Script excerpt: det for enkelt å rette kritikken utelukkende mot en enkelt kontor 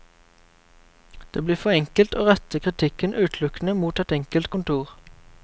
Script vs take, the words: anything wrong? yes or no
yes